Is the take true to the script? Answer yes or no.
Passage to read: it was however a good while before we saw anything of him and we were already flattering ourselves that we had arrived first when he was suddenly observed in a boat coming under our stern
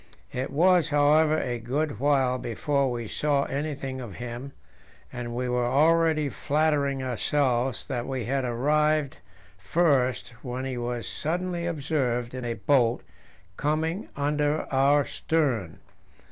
yes